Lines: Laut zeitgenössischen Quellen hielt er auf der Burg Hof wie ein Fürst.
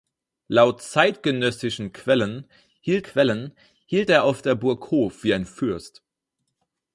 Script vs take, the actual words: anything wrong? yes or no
yes